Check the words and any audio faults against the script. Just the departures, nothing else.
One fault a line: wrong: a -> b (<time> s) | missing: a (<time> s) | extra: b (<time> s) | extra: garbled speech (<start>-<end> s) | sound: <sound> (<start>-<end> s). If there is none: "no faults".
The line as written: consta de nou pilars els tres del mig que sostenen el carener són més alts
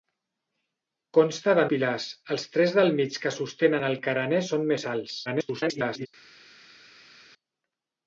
missing: nou (1.6 s)
extra: garbled speech (5.3-6.1 s)